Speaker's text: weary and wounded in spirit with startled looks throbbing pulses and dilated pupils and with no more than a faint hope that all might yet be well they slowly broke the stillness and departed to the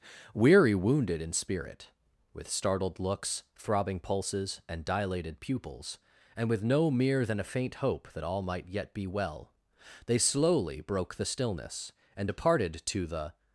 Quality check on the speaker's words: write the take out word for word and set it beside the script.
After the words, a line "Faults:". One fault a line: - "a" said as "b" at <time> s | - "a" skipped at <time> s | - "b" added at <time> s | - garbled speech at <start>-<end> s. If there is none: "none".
weary wounded in spirit with startled looks throbbing pulses and dilated pupils and with no mere than a faint hope that all might yet be well they slowly broke the stillness and departed to the
Faults:
- "and" skipped at 0.7 s
- "more" said as "mere" at 6.9 s